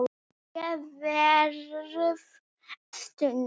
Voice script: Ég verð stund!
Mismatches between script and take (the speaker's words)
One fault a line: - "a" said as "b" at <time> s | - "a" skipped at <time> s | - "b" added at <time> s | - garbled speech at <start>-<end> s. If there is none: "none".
none